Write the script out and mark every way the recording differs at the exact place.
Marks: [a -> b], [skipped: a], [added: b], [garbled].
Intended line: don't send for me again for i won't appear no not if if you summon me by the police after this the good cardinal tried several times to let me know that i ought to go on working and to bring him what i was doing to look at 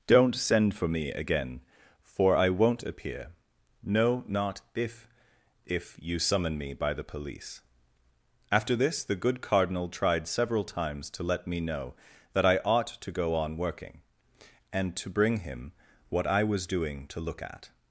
don't send for me again for i won't appear no not if if you summon me by the police after this the good cardinal tried several times to let me know that i ought to go on working and to bring him what i was doing to look at